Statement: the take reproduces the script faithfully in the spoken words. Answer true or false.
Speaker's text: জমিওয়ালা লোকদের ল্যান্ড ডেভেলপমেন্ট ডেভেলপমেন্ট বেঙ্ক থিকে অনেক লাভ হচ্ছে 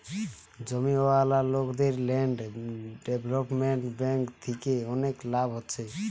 false